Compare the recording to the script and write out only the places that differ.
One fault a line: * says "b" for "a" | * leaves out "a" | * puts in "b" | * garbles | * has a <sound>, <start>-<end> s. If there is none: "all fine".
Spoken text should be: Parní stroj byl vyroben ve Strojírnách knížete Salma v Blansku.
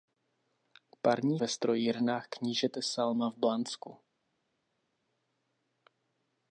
* leaves out "stroj byl vyroben"